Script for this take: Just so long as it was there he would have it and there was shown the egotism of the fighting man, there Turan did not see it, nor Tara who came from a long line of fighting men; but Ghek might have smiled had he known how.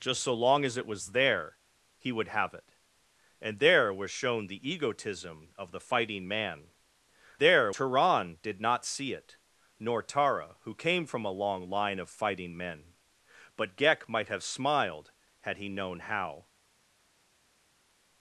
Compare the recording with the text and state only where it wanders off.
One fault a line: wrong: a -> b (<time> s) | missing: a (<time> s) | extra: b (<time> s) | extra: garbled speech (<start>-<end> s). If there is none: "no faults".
no faults